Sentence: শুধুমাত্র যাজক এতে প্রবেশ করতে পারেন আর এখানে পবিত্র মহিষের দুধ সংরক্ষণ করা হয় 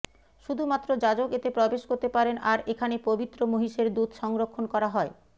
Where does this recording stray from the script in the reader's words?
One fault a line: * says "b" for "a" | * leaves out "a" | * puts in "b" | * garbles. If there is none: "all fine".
all fine